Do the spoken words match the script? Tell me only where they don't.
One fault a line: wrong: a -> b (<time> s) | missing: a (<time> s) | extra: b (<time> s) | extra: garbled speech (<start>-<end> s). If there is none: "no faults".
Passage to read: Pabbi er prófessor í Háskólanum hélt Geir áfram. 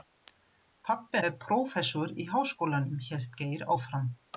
no faults